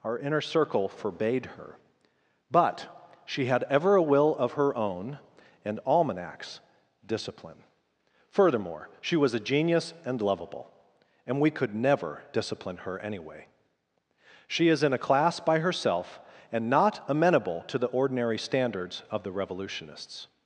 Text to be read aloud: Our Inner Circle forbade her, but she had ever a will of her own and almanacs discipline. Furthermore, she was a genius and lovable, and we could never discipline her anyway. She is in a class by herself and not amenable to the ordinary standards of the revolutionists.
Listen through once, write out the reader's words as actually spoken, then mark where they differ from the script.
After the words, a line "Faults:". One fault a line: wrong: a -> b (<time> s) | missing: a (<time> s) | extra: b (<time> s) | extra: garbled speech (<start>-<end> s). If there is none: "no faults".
Our Inner Circle forbade her, but she had ever a will of her own and almanacs discipline. Furthermore, she was a genius and lovable, and we could never discipline her anyway. She is in a class by herself and not amenable to the ordinary standards of the revolutionists.
Faults:
no faults